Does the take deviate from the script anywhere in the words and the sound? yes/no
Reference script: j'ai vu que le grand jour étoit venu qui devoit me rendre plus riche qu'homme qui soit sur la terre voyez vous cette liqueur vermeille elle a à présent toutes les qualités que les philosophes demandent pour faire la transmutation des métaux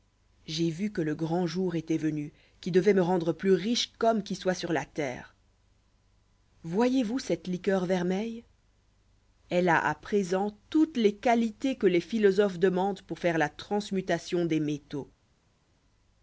no